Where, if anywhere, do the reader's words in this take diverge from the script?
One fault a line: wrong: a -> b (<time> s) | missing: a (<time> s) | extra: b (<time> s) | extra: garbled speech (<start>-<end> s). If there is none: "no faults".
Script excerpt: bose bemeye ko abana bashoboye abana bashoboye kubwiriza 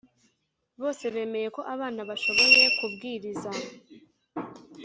missing: abana bashoboye (2.6 s)